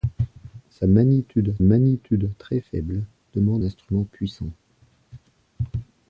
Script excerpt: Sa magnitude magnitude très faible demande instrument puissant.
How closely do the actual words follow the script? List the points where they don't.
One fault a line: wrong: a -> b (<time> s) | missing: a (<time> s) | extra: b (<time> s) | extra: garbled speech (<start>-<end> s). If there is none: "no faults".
no faults